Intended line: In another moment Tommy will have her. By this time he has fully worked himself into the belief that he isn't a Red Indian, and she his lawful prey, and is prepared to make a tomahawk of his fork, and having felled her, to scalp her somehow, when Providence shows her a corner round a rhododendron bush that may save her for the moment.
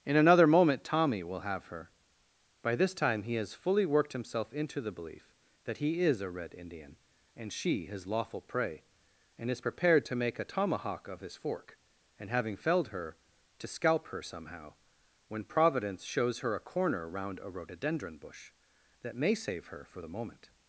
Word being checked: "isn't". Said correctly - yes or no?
no